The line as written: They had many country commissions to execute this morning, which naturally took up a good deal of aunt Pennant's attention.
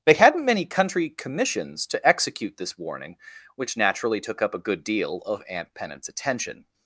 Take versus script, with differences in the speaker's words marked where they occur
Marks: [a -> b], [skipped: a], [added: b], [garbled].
They [had -> hadn't] many country commissions to execute this [morning, -> warning] which naturally took up a good deal of aunt Pennant's attention.